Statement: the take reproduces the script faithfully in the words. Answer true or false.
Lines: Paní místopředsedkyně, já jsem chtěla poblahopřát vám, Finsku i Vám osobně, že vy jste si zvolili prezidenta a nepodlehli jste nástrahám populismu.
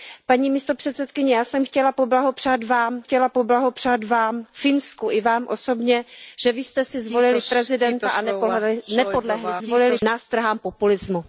false